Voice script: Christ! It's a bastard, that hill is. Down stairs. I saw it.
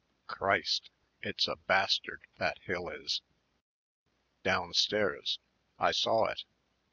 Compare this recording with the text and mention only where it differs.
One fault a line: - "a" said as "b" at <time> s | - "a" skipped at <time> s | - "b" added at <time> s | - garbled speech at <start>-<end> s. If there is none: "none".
none